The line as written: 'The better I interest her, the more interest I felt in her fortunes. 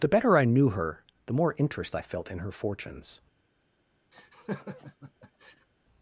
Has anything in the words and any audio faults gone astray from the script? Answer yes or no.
yes